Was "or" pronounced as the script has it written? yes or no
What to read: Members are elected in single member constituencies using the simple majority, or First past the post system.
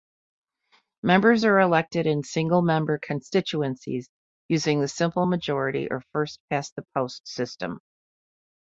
yes